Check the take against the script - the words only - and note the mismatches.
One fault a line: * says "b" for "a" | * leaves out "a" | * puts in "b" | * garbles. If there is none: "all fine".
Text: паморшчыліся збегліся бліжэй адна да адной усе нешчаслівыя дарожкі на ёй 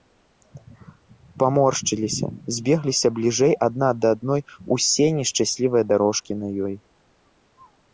all fine